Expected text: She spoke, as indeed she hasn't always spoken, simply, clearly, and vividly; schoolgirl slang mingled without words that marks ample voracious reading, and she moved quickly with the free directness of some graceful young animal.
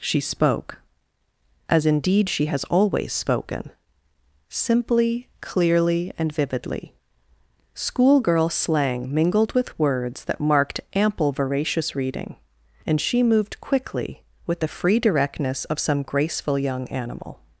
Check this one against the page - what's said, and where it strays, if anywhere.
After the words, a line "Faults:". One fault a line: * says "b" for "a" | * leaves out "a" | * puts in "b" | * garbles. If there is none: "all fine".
She spoke, as indeed she has always spoken, simply, clearly, and vividly; schoolgirl slang mingled with words that marked ample voracious reading, and she moved quickly with the free directness of some graceful young animal.
Faults:
* says "has" for "hasn't"
* says "with" for "without"
* says "marked" for "marks"